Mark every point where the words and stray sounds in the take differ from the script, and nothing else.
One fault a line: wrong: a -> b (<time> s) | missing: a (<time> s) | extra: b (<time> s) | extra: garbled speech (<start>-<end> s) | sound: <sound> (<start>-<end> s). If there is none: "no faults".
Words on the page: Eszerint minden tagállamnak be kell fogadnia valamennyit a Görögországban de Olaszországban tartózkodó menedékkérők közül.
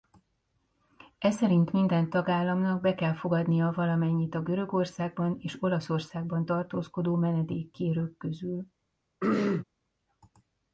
wrong: de -> és (5.4 s)
sound: throat clearing (9.2-9.6 s)